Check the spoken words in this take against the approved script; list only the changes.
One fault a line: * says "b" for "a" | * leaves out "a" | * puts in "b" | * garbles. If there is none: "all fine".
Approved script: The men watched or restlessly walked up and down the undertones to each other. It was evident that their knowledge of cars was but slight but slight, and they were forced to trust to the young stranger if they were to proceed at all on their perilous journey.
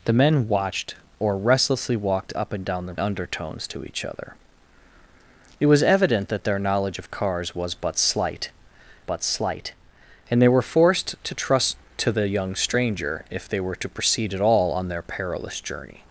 all fine